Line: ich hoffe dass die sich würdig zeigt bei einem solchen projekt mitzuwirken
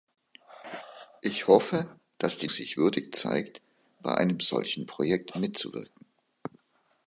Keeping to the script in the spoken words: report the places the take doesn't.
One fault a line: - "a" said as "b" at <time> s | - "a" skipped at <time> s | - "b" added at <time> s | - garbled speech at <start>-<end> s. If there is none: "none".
none